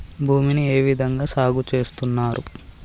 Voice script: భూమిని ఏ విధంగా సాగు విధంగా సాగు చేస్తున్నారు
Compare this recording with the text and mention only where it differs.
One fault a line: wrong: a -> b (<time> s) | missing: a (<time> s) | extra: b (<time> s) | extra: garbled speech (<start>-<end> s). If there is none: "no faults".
missing: విధంగా సాగు (1.6 s)